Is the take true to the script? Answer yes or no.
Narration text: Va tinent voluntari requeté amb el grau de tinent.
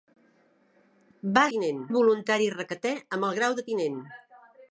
yes